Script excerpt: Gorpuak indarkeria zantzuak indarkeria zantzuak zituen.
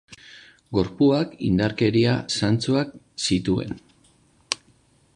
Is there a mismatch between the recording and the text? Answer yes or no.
yes